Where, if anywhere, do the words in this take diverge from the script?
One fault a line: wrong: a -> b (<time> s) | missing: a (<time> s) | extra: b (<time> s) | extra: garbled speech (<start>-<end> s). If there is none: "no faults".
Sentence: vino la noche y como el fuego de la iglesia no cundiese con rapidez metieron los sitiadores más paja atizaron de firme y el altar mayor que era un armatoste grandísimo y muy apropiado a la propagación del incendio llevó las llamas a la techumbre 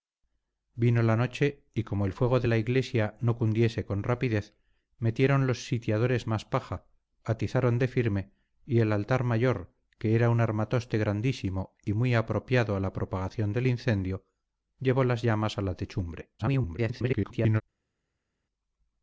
extra: garbled speech (16.4-17.6 s)